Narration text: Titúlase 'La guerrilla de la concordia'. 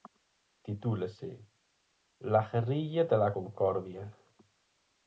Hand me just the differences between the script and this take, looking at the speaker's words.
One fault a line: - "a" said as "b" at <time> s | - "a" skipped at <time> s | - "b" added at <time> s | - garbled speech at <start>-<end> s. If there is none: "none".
none